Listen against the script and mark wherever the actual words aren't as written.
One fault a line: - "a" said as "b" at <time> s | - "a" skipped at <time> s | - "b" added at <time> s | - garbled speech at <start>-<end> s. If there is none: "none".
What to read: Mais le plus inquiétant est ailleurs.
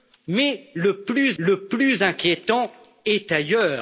- "le plus" added at 1.4 s